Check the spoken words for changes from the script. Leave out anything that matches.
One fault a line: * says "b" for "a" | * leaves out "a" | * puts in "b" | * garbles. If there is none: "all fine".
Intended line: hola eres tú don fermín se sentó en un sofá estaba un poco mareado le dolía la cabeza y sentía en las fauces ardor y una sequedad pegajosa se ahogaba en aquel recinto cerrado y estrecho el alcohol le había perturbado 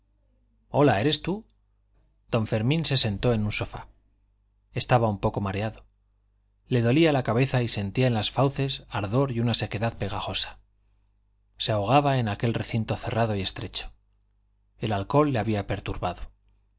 all fine